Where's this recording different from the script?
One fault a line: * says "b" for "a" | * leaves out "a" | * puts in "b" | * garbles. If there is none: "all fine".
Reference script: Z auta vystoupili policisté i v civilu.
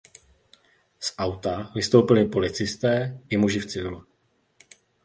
* puts in "muži"